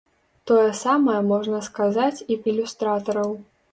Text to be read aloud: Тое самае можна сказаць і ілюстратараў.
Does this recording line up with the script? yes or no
yes